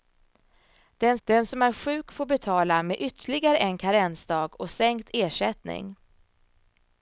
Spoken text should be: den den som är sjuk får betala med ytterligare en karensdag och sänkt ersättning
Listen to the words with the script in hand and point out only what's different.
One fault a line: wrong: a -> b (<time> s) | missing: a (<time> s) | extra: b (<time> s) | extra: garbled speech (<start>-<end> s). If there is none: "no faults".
no faults